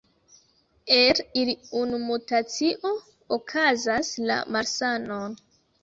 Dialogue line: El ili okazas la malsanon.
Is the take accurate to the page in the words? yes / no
no